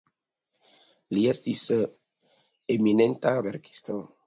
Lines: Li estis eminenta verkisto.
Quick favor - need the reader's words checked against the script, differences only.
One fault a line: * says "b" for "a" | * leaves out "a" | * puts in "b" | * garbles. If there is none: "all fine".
all fine